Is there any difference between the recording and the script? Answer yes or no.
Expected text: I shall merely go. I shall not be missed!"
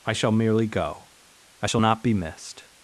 no